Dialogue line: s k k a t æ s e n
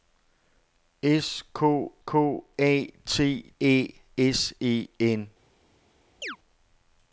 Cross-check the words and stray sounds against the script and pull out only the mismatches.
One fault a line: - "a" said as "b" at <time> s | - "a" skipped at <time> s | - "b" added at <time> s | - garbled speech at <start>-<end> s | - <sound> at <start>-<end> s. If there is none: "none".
- chirp at 6.2-6.4 s